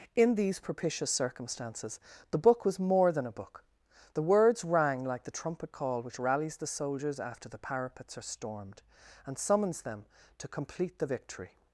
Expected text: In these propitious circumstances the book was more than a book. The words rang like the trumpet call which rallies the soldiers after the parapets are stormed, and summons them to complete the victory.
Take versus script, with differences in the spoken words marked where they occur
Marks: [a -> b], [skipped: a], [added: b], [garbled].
In these propitious circumstances the book was more than a book. The words rang like the trumpet call which rallies the soldiers after the parapets are stormed, and summons them to complete the victory.